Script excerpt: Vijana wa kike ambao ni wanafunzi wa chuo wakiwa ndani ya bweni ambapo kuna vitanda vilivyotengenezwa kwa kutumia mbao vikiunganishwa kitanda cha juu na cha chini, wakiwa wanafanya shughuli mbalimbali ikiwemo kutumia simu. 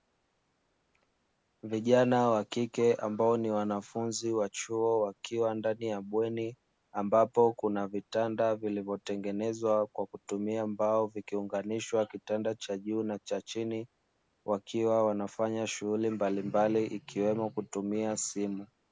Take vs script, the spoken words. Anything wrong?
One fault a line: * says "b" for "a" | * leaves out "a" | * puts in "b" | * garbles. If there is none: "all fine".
all fine